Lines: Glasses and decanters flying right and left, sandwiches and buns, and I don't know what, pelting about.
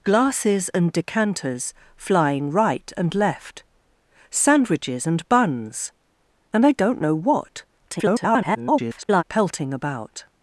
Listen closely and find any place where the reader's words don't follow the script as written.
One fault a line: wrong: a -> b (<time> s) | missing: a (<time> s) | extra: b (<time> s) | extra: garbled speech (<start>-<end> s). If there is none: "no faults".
extra: garbled speech (7.9-9.2 s)